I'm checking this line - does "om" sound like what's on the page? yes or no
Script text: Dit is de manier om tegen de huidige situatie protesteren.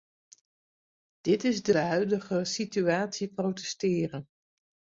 no